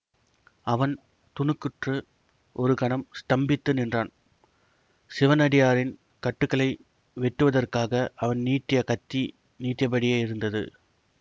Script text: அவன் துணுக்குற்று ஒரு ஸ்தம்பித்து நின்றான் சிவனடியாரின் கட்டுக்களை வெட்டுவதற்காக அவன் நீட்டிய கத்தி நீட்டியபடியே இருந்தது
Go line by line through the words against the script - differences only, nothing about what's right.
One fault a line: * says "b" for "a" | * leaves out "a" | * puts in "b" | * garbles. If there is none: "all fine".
* puts in "கணம்"